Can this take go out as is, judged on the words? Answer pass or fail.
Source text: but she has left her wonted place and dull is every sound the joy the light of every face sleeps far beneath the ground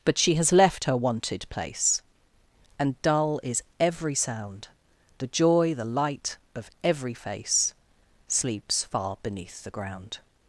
pass